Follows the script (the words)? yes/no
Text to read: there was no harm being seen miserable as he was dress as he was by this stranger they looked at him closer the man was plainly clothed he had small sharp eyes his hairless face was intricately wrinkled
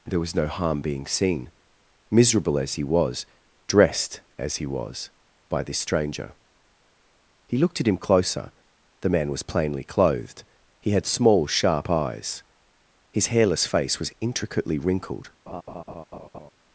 no